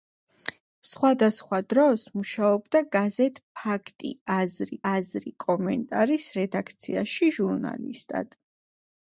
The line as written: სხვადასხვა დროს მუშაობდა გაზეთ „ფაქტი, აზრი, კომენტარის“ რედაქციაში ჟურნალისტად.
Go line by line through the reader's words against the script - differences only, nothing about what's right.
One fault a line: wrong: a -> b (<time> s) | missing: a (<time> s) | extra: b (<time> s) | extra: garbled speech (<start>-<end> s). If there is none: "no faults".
extra: აზრი (4.9 s)